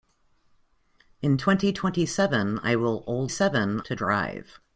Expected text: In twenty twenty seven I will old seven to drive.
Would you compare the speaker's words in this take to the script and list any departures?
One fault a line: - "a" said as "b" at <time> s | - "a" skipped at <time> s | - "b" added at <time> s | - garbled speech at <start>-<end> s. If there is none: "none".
none